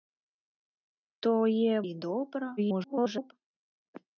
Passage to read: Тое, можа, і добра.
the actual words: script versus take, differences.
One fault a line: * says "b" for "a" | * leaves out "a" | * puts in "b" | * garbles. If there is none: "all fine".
* leaves out "можа"
* garbles